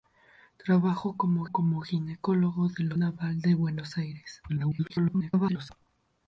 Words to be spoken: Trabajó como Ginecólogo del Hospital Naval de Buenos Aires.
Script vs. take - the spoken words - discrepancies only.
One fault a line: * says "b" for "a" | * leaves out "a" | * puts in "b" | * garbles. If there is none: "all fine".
* puts in "como"
* leaves out "Hospital"
* garbles